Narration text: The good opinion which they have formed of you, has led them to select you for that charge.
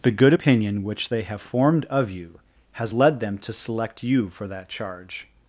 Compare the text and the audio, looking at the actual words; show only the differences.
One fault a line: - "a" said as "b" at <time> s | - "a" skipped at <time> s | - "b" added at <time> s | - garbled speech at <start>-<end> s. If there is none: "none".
none